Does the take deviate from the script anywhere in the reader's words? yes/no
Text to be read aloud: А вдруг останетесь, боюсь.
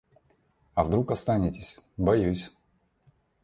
no